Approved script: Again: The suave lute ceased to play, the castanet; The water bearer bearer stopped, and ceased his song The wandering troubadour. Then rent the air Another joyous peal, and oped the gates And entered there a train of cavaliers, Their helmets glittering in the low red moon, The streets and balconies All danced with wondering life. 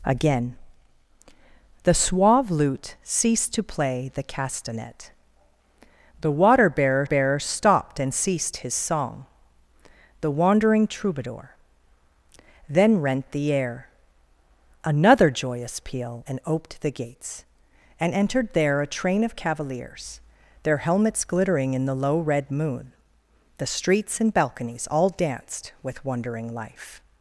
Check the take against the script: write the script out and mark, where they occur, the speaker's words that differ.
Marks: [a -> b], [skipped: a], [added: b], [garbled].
Again: The suave lute ceased to play, the castanet; The water bearer bearer stopped, and ceased his song The wandering troubadour. Then rent the air Another joyous peal, and oped the gates And entered there a train of cavaliers, Their helmets glittering in the low red moon, The streets and balconies All danced with wondering life.